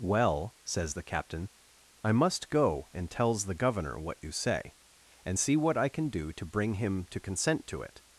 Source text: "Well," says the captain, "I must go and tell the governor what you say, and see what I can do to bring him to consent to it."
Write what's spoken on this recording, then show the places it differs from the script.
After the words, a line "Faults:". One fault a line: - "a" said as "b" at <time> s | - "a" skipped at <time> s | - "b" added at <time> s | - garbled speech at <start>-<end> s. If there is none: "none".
"Well," says the captain, "I must go and tells the governor what you say, and see what I can do to bring him to consent to it."
Faults:
- "tell" said as "tells" at 3.1 s